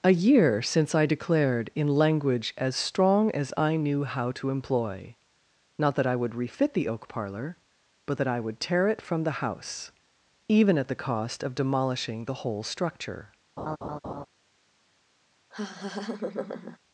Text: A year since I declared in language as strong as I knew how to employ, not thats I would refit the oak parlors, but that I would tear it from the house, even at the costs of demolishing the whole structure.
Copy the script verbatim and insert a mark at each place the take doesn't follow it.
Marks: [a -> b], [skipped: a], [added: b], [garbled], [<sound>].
A year since I declared in language as strong as I knew how to employ, not [thats -> that] I would refit the oak [parlors, -> parlor] but that I would tear it from the house, even at the [costs -> cost] of demolishing the whole structure. [laugh] [laugh]